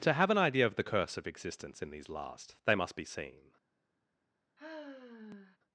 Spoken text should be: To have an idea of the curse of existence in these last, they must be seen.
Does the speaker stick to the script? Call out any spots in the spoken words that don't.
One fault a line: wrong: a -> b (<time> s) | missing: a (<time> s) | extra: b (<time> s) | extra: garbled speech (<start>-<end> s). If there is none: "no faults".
no faults